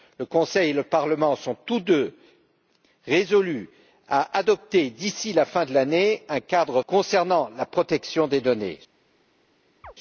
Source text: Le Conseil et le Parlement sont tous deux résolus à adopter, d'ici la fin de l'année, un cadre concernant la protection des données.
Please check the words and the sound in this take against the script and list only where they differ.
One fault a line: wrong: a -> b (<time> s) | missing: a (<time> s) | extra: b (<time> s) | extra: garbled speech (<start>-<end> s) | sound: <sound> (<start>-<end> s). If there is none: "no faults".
sound: chirp (9.8-9.9 s)